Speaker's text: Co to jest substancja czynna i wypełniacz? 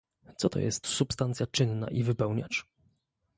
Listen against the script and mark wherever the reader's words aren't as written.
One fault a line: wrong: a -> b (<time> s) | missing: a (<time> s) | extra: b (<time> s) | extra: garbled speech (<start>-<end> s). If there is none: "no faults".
no faults